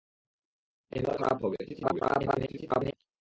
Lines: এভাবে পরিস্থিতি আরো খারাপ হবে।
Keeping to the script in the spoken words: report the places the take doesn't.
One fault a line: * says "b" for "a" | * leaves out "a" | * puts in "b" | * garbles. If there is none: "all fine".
* leaves out "পরিস্থিতি আরো"
* garbles